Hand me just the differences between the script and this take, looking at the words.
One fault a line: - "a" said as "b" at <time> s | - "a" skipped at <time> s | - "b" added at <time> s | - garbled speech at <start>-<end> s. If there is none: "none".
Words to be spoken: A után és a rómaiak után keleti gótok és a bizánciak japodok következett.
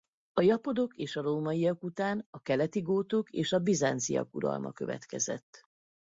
- "után" said as "japodok" at 0.4 s
- "a" added at 2.3 s
- "japodok" said as "uralma" at 4.3 s